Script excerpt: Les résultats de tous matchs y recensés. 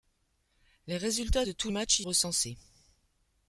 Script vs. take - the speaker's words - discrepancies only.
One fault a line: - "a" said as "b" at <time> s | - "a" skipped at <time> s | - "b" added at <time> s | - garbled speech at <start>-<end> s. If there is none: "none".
none